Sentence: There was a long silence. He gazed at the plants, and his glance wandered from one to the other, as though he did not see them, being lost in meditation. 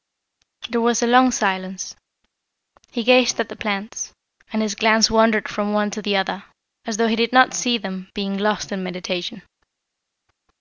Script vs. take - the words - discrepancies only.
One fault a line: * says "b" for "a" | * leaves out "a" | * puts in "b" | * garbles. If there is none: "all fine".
all fine